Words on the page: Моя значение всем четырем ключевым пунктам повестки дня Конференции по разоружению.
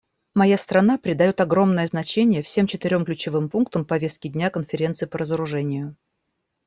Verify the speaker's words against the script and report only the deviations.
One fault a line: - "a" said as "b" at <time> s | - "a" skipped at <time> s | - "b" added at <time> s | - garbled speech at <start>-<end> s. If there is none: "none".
- "страна придает огромное" added at 0.6 s